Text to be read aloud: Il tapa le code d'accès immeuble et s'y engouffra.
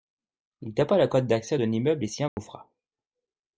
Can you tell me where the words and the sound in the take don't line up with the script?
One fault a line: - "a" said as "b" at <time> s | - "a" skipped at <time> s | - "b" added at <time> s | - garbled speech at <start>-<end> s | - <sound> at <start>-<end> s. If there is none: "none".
- "d'un" added at 1.6 s
- dropout at 2.3-2.4 s